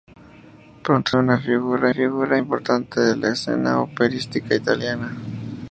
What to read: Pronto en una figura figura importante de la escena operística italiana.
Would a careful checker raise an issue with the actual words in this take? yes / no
no